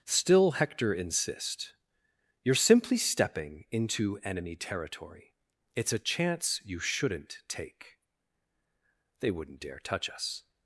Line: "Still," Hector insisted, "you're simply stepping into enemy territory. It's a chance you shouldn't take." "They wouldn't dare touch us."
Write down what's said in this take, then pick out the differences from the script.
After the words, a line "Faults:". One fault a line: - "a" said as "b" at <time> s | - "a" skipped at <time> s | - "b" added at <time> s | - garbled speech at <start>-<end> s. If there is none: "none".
"Still," Hector insist, "you're simply stepping into enemy territory. It's a chance you shouldn't take." "They wouldn't dare touch us."
Faults:
- "insisted" said as "insist" at 0.9 s